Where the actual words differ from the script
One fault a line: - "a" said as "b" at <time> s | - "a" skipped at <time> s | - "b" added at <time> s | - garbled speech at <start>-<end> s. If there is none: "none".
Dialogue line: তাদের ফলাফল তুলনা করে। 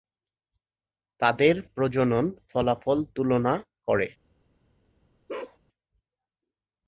- "প্রজনন" added at 1.8 s